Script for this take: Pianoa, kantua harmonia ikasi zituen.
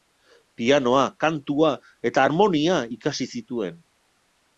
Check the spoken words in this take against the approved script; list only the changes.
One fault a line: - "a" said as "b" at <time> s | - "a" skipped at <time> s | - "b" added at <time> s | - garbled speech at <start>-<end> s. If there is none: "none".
- "eta" added at 2.1 s